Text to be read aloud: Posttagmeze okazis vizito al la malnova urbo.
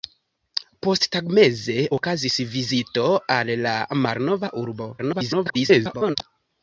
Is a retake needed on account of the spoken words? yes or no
yes